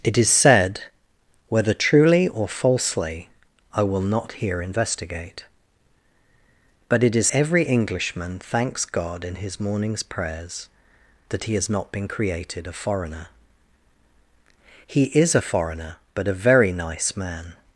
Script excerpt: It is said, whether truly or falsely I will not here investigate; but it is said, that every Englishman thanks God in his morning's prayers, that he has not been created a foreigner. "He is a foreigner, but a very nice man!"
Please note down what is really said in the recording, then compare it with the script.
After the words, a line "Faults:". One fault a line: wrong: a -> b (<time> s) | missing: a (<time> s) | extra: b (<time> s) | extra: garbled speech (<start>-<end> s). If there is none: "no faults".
It is said, whether truly or falsely I will not here investigate; but it is every Englishman thanks God in his morning's prayers, that he has not been created a foreigner. "He is a foreigner, but a very nice man!"
Faults:
missing: said that (7.3 s)